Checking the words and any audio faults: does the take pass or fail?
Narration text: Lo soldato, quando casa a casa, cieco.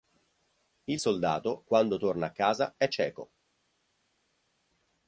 fail